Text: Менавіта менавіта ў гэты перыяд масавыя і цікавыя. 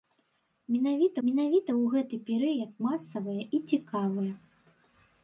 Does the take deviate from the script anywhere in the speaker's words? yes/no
no